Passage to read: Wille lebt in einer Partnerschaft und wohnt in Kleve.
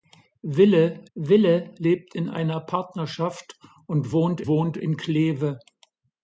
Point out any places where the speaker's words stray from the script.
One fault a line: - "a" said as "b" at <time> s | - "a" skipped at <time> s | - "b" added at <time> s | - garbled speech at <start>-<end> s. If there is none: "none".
- "wille" added at 1.1 s
- "wohnt" added at 4.5 s